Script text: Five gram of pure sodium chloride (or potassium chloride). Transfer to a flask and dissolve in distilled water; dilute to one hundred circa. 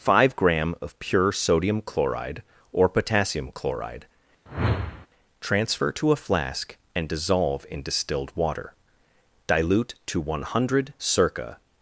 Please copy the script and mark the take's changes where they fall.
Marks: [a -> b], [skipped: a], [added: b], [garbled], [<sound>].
Five gram of pure sodium chloride (or potassium chloride). [whoosh] Transfer to a flask and dissolve in distilled water; dilute to one hundred circa.